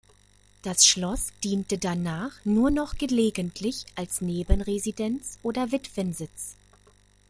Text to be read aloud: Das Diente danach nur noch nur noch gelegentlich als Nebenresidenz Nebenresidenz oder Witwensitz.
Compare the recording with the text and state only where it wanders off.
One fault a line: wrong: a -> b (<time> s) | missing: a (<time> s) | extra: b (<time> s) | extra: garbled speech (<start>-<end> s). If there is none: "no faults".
extra: Schloss (0.8 s)
missing: nur noch (3.0 s)
missing: Nebenresidenz (5.4 s)